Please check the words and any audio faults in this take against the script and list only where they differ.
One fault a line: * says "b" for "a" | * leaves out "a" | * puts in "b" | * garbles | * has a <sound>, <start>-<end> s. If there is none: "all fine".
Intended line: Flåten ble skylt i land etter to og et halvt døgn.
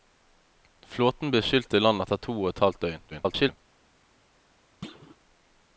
* garbles
* has a thud, 4.8-5.2 s